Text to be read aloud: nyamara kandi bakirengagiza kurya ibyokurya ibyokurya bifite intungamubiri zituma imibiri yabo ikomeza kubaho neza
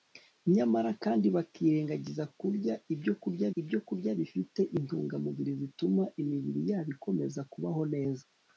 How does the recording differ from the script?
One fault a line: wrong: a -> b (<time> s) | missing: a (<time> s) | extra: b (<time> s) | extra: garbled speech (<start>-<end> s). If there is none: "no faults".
no faults